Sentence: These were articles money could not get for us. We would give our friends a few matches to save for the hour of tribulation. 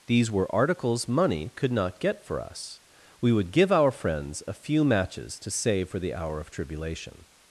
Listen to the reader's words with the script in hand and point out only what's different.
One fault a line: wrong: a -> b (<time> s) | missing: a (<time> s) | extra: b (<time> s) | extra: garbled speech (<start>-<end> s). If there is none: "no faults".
no faults